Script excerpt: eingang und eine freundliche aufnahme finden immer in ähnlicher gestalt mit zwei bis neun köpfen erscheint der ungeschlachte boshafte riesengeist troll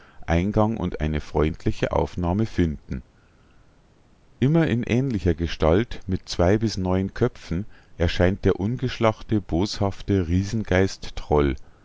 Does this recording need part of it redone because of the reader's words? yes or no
no